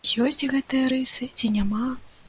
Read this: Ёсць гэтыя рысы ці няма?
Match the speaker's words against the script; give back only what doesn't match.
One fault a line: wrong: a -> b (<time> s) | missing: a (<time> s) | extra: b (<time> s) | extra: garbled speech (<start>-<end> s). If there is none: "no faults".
no faults